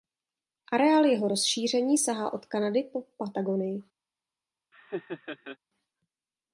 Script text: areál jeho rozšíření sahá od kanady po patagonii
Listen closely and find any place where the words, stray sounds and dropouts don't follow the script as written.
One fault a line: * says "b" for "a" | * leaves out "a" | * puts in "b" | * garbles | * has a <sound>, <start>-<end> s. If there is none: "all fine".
* has a laugh, 4.7-5.6 s